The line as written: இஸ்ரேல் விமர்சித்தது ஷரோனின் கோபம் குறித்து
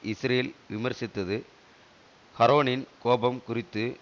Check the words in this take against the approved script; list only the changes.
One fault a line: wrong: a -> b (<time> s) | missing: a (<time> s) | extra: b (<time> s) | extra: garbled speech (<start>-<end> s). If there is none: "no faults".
no faults